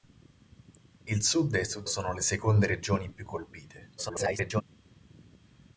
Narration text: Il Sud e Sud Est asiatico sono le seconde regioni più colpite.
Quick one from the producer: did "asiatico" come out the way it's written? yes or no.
no